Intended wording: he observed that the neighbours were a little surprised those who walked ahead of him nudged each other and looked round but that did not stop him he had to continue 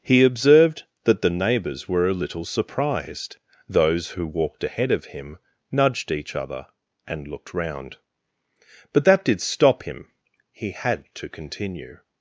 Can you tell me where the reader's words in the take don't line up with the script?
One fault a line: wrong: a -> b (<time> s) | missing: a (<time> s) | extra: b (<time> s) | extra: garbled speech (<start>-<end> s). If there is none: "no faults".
missing: not (9.4 s)